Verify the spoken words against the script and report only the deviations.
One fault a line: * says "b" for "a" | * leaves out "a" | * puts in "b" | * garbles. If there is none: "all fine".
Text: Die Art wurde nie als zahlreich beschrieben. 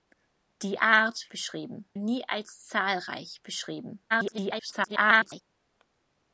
* says "beschrieben" for "wurde"
* garbles